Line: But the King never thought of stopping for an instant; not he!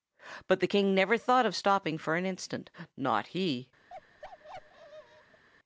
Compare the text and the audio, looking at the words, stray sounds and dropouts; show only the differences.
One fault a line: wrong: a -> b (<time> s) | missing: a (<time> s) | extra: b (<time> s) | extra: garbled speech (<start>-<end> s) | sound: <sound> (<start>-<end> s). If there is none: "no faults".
sound: bark (3.9-5.4 s)